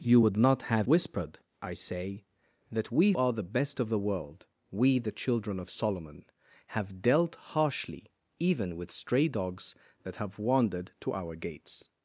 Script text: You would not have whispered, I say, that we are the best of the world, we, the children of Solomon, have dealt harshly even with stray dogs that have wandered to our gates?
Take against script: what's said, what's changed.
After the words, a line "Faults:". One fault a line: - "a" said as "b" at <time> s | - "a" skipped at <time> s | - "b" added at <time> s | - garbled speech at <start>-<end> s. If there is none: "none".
You would not have whispered, I say, that we are the best of the world, we, the children of Solomon, have dealt harshly even with stray dogs that have wandered to our gates?
Faults:
none